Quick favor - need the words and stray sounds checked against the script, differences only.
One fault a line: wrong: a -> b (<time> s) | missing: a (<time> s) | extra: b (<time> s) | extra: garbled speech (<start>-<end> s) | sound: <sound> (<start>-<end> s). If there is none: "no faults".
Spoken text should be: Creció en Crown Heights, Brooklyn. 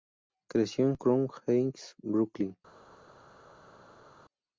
no faults